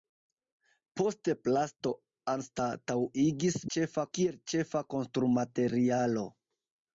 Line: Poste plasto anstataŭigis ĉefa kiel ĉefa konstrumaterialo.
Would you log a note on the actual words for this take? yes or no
no